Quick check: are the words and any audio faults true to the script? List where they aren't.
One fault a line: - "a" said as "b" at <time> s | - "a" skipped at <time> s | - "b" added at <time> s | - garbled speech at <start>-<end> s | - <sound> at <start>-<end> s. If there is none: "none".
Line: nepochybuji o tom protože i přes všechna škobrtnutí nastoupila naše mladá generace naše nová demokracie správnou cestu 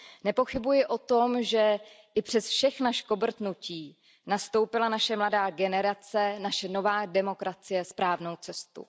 - "protože" said as "že" at 1.4 s